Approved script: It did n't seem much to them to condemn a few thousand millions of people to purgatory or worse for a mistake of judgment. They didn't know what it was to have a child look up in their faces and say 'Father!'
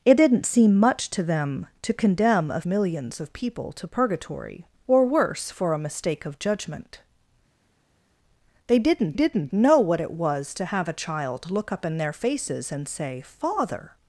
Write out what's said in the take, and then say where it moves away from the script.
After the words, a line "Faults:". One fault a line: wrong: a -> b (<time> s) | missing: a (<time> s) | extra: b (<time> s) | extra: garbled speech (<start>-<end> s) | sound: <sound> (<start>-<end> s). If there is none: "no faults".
It did n't seem much to them to condemn a millions of people to purgatory or worse for a mistake of judgment. They didn't didn't know what it was to have a child look up in their faces and say 'Father!'
Faults:
missing: few thousand (2.6 s)
extra: didn't (9.1 s)